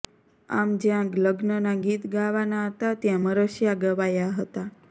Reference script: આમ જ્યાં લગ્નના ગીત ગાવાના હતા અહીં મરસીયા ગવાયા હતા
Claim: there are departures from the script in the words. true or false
true